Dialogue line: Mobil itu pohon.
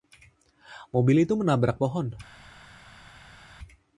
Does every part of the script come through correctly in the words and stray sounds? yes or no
no